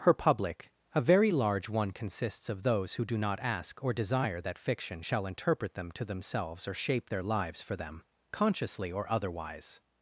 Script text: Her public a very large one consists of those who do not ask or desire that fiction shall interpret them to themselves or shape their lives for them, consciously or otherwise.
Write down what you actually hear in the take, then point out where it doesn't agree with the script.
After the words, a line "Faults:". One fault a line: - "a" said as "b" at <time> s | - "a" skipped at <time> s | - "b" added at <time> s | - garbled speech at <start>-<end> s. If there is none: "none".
Her public a very large one consists of those who do not ask or desire that fiction shall interpret them to themselves or shape their lives for them, consciously or otherwise.
Faults:
none